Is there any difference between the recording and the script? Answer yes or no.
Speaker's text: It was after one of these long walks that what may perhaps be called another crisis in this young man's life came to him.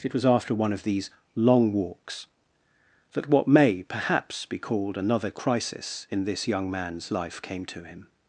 no